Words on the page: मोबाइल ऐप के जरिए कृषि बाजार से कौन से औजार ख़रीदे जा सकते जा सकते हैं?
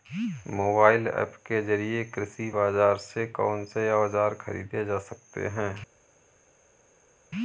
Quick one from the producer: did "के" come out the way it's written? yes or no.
yes